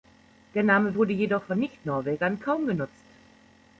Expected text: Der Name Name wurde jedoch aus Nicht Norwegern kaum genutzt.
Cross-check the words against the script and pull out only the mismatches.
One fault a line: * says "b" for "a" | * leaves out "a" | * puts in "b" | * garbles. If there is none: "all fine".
* leaves out "Name"
* says "von" for "aus"